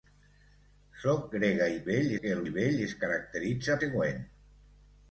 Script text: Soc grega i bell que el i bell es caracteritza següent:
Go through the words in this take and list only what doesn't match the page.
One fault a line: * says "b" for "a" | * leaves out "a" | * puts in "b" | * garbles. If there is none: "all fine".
all fine